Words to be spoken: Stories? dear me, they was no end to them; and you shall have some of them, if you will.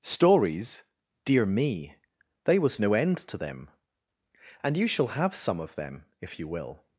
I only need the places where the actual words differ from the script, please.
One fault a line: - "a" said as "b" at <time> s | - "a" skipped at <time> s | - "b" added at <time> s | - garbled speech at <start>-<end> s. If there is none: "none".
none